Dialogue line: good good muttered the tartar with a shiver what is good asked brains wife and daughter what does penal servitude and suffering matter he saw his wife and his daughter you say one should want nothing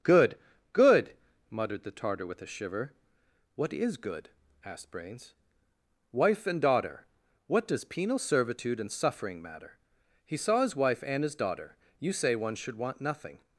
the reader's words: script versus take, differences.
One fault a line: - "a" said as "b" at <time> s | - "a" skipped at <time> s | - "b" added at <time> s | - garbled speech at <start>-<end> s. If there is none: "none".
none